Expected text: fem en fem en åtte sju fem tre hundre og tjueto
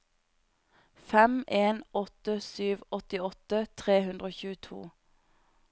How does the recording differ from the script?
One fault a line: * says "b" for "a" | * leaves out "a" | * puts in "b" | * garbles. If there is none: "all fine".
* leaves out "fem en"
* says "åttiåtte" for "fem"